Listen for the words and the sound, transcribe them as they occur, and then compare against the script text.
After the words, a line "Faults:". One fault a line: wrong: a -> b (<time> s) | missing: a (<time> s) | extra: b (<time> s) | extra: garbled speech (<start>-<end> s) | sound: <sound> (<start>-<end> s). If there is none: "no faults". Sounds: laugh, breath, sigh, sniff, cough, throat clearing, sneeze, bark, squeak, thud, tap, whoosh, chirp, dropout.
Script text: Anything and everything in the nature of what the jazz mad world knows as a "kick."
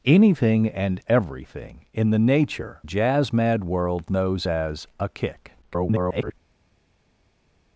Anything and everything in the nature jazz mad world knows as a "kick." [garbled]
Faults:
missing: of what the (2.8 s)
extra: garbled speech (5.6-6.3 s)